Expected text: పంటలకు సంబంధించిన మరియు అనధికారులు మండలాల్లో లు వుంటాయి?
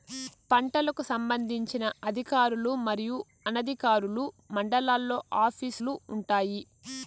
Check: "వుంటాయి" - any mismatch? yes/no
no